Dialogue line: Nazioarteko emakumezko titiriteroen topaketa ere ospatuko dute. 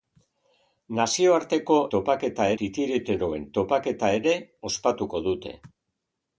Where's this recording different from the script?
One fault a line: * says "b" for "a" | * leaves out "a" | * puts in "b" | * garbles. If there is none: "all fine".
* says "topaketa" for "emakumezko"